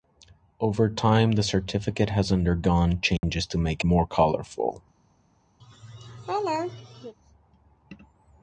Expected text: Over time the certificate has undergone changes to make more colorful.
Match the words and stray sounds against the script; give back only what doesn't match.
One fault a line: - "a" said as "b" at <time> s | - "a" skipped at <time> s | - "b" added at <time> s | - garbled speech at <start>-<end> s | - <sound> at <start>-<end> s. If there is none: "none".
- dropout at 3.2-3.2 s
- laugh at 5.6-7.1 s